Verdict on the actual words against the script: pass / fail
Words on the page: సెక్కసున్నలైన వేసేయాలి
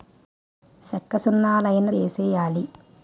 pass